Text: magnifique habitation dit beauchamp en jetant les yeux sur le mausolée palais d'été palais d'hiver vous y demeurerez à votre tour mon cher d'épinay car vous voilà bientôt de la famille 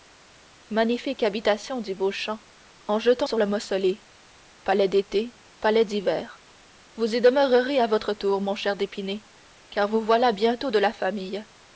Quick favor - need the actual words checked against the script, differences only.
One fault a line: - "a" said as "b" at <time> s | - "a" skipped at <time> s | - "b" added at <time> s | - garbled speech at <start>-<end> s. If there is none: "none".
- "les yeux" skipped at 3.3 s